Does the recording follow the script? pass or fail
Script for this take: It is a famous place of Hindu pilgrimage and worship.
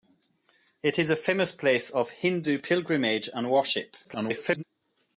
fail